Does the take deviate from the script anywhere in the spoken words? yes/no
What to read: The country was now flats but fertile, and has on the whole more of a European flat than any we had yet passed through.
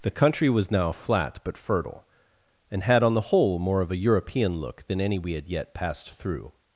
yes